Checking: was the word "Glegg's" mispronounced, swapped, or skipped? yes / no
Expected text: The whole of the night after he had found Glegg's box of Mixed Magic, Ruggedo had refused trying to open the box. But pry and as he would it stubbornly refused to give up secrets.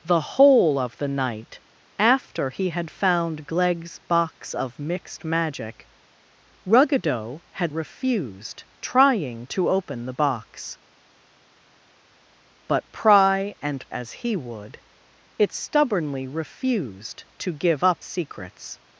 no